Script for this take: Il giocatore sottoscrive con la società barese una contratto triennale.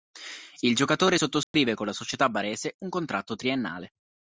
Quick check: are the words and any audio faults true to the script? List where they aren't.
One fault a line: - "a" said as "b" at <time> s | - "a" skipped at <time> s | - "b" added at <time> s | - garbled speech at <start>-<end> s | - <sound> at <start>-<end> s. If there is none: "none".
- dropout at 1.4-1.5 s
- "una" said as "un" at 2.8 s